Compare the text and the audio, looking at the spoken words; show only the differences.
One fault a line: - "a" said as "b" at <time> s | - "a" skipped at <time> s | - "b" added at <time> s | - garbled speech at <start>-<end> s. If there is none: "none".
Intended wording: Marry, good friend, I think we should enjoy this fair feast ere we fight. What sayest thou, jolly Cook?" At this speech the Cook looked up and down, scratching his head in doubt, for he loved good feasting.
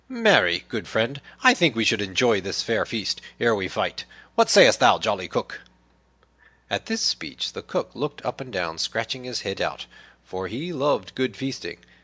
- "in" skipped at 9.6 s